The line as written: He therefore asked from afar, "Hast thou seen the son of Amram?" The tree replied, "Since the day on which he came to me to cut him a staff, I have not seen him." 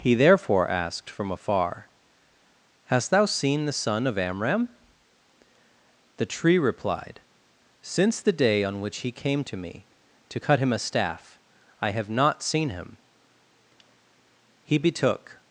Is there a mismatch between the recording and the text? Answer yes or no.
yes